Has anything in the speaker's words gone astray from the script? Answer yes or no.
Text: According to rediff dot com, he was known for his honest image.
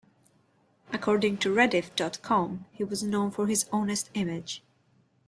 no